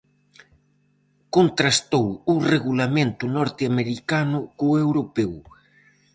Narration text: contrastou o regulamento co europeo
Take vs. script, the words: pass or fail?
fail